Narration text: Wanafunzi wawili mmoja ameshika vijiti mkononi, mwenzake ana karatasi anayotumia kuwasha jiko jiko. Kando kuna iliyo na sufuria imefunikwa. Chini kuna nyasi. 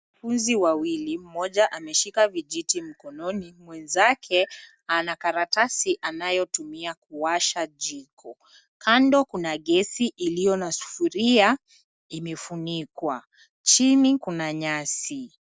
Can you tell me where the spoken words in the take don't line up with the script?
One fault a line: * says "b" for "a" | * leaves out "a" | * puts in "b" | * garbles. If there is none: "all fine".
* leaves out "jiko"
* puts in "gesi"